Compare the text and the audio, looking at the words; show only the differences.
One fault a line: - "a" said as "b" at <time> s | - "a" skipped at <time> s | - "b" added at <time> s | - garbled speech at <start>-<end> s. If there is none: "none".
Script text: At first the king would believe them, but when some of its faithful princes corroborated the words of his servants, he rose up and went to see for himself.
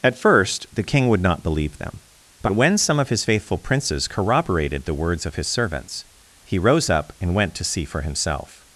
- "not" added at 1.2 s
- "its" said as "his" at 3.1 s